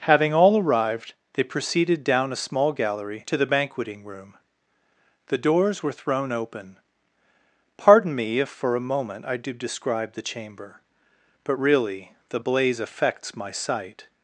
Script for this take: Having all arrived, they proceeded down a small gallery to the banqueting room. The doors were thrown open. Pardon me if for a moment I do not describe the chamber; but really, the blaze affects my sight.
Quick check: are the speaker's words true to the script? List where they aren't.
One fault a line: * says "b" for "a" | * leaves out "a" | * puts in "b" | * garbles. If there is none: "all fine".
* leaves out "not"